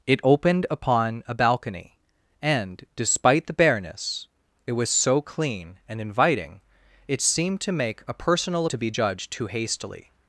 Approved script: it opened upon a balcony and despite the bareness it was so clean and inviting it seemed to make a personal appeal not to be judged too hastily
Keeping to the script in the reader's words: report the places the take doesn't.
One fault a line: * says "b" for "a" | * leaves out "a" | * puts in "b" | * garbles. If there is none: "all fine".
* leaves out "appeal not"